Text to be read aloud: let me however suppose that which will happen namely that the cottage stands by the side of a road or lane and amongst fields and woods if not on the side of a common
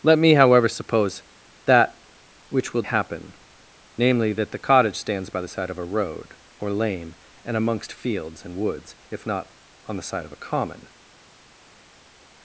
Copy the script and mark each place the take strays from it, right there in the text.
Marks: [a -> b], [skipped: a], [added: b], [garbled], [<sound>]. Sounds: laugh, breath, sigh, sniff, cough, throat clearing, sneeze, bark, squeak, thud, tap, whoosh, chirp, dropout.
let me however suppose that which will happen namely that the cottage stands by the side of a road or lane and amongst fields and woods if not on the side of a common